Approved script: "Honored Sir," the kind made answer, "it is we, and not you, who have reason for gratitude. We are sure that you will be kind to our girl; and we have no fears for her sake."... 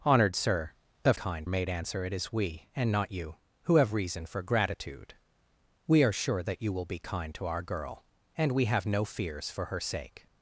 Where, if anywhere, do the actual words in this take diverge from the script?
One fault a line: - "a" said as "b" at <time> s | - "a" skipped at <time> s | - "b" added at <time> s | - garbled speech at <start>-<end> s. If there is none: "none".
none